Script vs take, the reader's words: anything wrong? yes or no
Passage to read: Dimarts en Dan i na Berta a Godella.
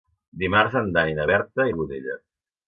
no